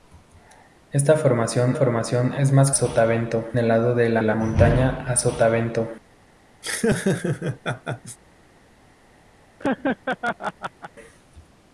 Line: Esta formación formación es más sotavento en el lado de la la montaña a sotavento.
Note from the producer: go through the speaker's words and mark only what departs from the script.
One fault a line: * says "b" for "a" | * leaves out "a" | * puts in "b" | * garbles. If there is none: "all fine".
all fine